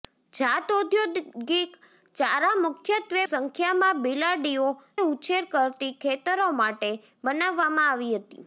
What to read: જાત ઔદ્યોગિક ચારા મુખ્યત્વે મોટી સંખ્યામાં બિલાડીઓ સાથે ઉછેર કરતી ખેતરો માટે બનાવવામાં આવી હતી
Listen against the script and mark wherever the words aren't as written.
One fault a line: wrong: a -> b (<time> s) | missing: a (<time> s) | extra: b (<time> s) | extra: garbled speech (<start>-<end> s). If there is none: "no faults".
missing: મોટી (3.2 s)
missing: સાથે (4.7 s)